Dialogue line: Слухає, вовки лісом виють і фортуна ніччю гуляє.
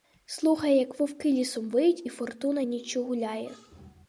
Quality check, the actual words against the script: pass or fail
fail